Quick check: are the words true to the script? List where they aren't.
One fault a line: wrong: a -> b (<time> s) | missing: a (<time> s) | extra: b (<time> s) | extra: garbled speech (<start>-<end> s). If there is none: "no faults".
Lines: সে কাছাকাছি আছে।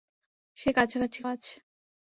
no faults